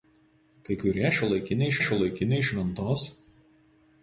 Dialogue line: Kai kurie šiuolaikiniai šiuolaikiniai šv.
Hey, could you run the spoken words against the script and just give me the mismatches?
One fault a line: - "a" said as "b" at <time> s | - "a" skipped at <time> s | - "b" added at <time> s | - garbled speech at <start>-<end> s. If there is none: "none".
none